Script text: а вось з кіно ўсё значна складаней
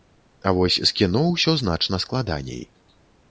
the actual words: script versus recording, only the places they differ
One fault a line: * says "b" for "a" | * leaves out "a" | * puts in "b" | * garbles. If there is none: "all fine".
all fine